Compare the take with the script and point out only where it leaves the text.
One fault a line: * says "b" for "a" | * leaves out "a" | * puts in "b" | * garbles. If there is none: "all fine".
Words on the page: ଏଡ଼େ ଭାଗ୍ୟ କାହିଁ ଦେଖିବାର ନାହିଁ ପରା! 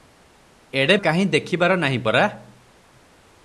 * leaves out "ଭାଗ୍ୟ"